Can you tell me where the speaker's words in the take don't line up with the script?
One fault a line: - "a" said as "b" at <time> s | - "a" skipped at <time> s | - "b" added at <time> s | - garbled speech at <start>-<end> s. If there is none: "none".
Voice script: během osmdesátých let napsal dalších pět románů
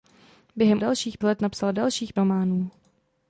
- "osmdesátých" said as "dalších" at 0.8 s
- "pět" skipped at 2.1 s